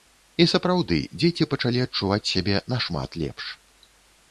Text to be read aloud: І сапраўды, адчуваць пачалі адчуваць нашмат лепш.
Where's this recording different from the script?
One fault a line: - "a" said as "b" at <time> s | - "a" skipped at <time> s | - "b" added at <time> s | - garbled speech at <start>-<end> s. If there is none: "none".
- "адчуваць" said as "дзеці" at 1.2 s
- "сябе" added at 2.3 s